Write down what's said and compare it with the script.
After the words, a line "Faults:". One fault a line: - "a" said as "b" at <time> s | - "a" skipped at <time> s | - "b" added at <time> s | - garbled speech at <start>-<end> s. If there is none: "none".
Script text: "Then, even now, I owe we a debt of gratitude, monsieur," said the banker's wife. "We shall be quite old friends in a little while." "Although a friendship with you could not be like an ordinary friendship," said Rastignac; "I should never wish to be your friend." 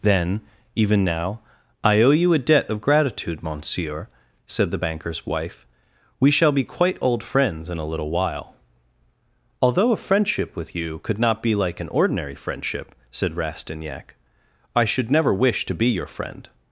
"Then, even now, I owe you a debt of gratitude, monsieur," said the banker's wife. "We shall be quite old friends in a little while." "Although a friendship with you could not be like an ordinary friendship," said Rastignac; "I should never wish to be your friend."
Faults:
- "we" said as "you" at 2.1 s